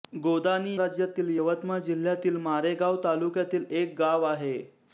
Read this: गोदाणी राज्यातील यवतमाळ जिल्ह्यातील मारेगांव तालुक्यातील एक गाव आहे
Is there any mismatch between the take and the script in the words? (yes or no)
no